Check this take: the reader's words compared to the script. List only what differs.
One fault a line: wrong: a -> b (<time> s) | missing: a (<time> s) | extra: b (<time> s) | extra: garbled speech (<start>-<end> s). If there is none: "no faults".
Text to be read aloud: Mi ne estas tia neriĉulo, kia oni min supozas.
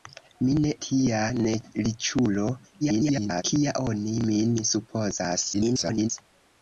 missing: estas (0.7 s)
extra: garbled speech (2.8-3.4 s)
extra: garbled speech (5.5-6.1 s)